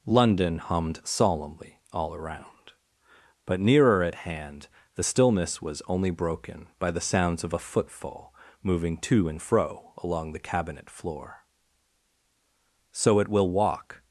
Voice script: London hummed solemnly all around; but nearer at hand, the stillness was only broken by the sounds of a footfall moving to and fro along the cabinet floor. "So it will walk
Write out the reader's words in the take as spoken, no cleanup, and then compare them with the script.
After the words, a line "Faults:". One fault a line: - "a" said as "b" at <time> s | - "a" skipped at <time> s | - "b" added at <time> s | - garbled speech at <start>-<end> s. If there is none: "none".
London hummed solemnly all around; but nearer at hand, the stillness was only broken by the sounds of a footfall moving to and fro along the cabinet floor. "So it will walk
Faults:
none